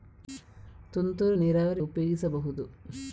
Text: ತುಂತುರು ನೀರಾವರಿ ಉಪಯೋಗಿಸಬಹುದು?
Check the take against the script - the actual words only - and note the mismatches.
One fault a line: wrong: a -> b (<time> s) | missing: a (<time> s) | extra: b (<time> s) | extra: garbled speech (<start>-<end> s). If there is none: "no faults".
no faults